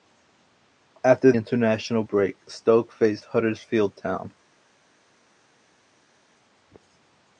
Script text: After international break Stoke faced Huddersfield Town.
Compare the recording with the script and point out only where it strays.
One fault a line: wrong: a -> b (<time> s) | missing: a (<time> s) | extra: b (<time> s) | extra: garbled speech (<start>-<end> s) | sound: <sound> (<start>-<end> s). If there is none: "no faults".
no faults